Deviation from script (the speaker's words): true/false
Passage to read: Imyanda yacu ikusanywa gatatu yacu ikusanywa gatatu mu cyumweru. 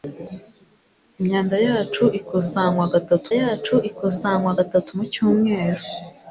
false